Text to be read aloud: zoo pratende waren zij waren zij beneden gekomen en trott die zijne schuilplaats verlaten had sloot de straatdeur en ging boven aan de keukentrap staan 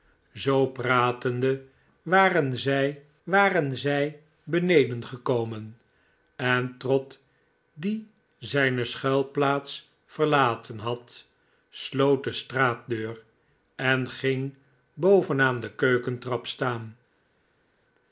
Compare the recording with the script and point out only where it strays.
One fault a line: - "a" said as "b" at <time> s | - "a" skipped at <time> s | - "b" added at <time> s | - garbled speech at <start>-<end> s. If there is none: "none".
none